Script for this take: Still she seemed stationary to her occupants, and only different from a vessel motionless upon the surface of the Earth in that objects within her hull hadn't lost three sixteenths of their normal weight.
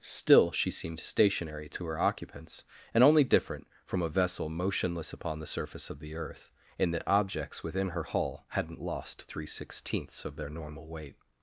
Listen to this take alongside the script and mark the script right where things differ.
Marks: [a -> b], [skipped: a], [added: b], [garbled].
Still she seemed stationary to her occupants, and only different from a vessel motionless upon the surface of the Earth in that objects within her hull hadn't lost three sixteenths of their normal weight.